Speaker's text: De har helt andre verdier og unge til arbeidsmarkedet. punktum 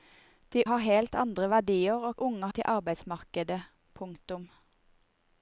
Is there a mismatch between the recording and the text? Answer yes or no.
no